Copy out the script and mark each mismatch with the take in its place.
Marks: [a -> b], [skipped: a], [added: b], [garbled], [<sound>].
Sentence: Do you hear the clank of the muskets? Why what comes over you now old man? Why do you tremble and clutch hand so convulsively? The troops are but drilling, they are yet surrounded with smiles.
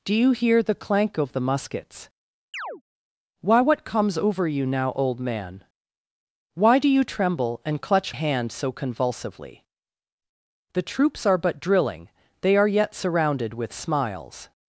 Do you hear the clank of the muskets? [chirp] Why what comes over you now old man? Why do you tremble and clutch hand so convulsively? The troops are but drilling, they are yet surrounded with smiles.